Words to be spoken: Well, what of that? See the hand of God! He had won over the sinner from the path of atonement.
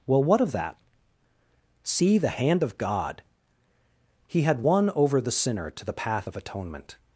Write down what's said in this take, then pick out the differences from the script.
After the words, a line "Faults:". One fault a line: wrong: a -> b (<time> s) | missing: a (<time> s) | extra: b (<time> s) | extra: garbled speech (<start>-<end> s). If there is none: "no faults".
Well, what of that? See the hand of God! He had won over the sinner to the path of atonement.
Faults:
wrong: from -> to (5.7 s)